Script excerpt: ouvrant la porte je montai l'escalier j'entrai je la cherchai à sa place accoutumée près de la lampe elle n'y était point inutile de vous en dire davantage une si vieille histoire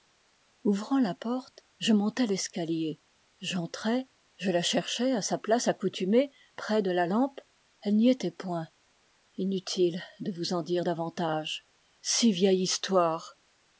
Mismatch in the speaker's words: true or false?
true